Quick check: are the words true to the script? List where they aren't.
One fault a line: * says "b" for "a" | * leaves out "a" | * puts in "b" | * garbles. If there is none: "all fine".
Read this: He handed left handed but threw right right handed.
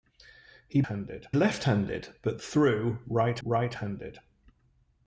all fine